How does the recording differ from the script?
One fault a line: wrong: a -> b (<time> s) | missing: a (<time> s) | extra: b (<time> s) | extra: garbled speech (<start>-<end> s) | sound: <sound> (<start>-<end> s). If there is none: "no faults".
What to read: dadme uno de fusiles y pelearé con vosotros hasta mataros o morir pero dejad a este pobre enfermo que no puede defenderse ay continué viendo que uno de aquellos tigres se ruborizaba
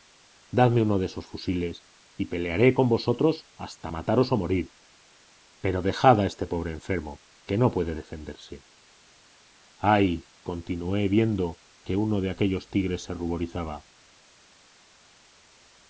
extra: esos (1.1 s)